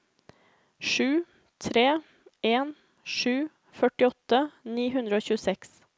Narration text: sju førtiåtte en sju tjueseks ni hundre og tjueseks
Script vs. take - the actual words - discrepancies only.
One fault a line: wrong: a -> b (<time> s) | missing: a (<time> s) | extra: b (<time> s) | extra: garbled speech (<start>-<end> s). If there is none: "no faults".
wrong: førtiåtte -> tre (1.6 s)
wrong: tjueseks -> førtiåtte (3.8 s)